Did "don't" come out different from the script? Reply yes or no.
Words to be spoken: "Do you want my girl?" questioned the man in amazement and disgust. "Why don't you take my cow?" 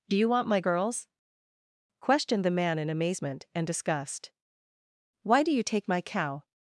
yes